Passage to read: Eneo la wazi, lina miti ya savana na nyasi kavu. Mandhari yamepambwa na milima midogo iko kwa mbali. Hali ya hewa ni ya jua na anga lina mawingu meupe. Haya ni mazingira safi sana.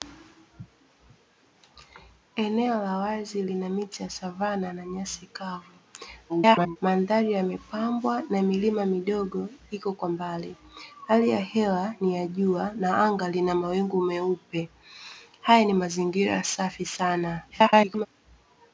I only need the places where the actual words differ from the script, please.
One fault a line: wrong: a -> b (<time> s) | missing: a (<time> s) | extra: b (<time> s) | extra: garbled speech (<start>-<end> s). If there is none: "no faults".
extra: garbled speech (6.3-6.8 s)
extra: garbled speech (17.5-18.1 s)